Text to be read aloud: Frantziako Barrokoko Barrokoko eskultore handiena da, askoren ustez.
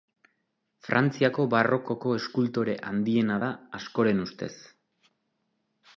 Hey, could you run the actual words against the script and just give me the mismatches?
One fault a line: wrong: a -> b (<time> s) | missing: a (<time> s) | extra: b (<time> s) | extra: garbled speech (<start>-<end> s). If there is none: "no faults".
missing: Barrokoko (2.1 s)